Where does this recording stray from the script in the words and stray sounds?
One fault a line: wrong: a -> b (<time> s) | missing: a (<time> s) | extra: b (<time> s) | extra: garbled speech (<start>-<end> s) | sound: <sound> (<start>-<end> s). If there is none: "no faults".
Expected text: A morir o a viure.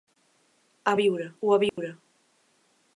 wrong: morir -> viure (1.0 s)
sound: dropout (1.7-1.8 s)